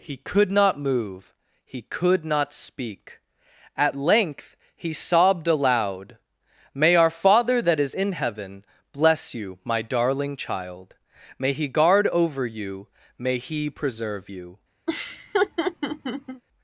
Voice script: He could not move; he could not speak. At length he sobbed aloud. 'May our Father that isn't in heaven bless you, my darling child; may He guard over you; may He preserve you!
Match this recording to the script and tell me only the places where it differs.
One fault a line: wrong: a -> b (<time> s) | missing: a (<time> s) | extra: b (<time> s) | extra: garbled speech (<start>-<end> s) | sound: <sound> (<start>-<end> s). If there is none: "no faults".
wrong: isn't -> is (7.8 s)
sound: laugh (14.9-16.4 s)